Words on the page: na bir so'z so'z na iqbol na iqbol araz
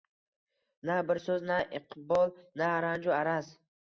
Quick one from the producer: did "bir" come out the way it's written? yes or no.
yes